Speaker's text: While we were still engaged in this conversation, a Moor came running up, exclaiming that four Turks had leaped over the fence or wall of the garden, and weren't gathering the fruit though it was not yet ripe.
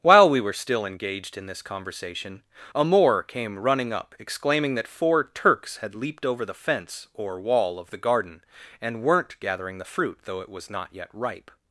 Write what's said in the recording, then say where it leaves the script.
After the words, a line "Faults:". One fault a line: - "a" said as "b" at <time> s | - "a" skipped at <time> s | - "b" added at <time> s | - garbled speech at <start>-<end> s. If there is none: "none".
While we were still engaged in this conversation, a Moor came running up, exclaiming that four Turks had leaped over the fence or wall of the garden, and weren't gathering the fruit though it was not yet ripe.
Faults:
none